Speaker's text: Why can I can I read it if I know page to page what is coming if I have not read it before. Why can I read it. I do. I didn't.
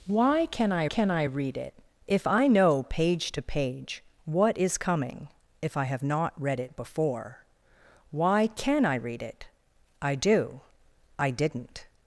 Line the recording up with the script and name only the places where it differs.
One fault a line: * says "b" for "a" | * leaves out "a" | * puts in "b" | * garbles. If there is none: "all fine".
all fine